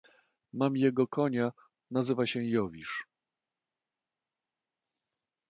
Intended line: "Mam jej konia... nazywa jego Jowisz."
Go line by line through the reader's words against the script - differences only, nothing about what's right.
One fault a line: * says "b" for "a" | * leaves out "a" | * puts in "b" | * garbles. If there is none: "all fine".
* says "jego" for "jej"
* says "się" for "jego"